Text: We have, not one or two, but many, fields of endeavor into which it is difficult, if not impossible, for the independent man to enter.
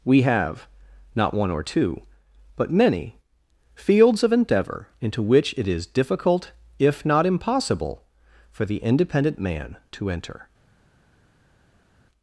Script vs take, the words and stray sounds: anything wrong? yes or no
no